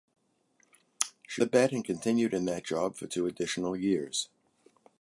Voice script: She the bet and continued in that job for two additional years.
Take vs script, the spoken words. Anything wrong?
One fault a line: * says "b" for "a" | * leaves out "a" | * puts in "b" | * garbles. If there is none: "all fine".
all fine